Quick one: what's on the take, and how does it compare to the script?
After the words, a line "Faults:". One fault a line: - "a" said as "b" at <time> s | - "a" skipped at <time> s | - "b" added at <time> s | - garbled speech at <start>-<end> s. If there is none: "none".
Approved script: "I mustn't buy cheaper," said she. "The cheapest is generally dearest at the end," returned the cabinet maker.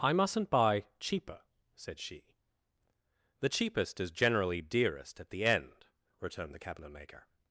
"I mustn't buy cheaper," said she. "The cheapest is generally dearest at the end," returned the cabinet maker.
Faults:
none